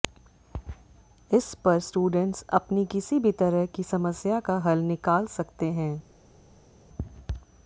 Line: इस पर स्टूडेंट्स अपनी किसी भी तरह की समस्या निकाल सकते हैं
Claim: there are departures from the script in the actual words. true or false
true